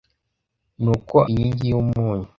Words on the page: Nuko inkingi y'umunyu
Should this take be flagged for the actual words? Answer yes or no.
no